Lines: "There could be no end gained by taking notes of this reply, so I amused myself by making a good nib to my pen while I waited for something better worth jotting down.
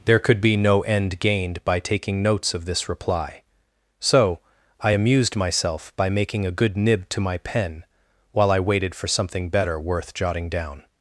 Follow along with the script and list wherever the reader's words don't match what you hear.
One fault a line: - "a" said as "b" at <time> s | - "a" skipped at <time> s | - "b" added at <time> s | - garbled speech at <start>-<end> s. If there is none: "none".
none